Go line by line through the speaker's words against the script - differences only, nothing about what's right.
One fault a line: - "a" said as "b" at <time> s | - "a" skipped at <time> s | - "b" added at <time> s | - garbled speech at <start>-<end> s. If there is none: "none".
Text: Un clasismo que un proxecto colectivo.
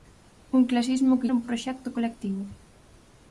none